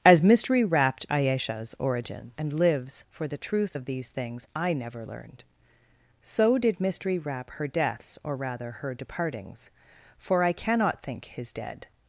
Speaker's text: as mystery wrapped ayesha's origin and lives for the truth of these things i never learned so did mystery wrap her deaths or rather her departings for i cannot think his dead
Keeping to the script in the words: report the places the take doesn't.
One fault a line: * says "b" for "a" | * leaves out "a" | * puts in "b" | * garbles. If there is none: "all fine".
all fine